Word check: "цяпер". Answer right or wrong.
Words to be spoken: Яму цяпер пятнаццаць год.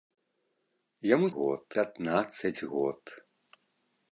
wrong